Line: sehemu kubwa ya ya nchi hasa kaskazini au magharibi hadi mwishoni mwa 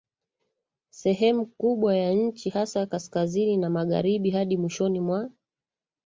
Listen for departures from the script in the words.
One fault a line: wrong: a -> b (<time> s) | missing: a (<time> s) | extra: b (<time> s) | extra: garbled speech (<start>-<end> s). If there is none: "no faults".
missing: ya (2.1 s)
wrong: au -> na (3.6 s)